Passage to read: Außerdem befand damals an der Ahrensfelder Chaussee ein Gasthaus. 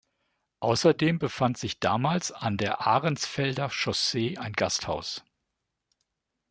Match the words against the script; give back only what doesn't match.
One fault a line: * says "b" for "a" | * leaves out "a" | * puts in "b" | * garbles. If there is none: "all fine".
* puts in "sich"